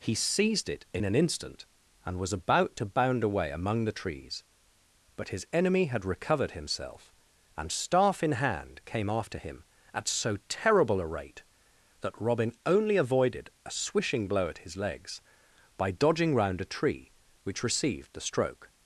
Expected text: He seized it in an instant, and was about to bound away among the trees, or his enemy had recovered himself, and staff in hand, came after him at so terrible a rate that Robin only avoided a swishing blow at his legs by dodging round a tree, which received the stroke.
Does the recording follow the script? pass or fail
fail